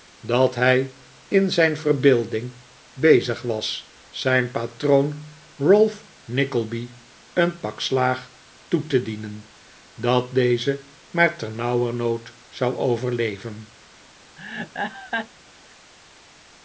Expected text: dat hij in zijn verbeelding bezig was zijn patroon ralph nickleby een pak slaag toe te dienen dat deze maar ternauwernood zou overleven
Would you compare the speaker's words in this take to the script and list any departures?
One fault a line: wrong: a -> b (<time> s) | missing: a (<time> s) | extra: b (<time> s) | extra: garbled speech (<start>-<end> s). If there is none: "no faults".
no faults